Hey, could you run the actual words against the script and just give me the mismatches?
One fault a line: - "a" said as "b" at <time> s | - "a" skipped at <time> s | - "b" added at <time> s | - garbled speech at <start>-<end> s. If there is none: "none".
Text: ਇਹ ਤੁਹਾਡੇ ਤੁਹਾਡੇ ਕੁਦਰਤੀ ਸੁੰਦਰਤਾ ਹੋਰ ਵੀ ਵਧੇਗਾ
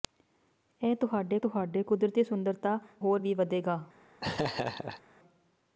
none